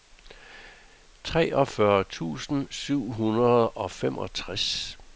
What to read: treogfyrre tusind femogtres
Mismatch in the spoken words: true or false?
true